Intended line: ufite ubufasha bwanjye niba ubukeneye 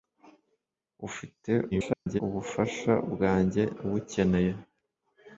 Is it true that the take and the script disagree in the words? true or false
true